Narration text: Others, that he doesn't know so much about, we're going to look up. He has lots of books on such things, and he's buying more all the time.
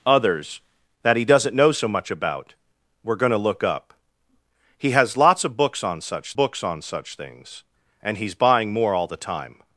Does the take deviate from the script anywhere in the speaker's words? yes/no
yes